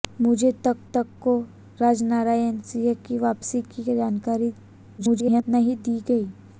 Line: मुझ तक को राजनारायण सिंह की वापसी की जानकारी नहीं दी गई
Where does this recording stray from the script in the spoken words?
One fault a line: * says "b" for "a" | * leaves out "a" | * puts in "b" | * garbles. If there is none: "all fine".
* puts in "तक"
* garbles